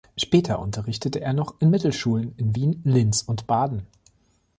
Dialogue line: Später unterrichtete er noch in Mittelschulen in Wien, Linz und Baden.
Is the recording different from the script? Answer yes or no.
no